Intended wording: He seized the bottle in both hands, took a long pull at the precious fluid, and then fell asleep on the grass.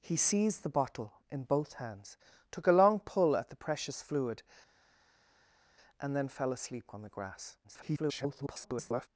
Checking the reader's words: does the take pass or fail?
fail